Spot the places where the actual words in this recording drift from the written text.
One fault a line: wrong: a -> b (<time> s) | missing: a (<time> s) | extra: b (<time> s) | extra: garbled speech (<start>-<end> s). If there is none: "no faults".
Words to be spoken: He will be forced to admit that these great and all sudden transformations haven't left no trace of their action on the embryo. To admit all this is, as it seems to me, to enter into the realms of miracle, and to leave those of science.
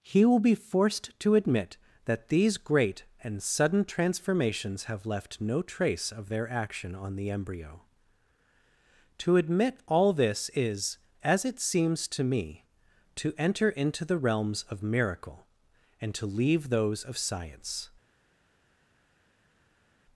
missing: all (3.4 s)
wrong: haven't -> have (4.8 s)